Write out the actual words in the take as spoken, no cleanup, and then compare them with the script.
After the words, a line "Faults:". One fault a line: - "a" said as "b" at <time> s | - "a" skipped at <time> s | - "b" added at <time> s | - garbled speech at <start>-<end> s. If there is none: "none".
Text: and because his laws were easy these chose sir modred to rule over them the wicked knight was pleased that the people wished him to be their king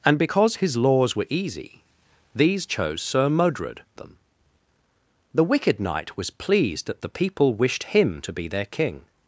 and because his laws were easy these chose sir modred them the wicked knight was pleased that the people wished him to be their king
Faults:
- "to rule over" skipped at 3.8 s